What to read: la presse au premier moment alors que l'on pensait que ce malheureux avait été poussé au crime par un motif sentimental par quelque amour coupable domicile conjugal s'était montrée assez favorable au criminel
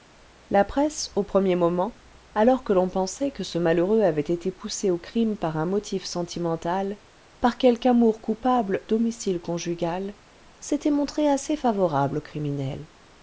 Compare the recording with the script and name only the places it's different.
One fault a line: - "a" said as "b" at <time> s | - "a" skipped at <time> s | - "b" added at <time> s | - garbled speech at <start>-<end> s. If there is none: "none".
none